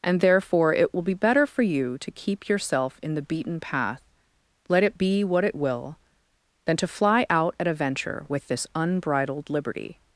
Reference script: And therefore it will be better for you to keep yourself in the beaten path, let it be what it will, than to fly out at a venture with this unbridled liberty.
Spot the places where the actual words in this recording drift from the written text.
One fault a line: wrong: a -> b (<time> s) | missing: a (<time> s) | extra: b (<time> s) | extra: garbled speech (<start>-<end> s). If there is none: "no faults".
no faults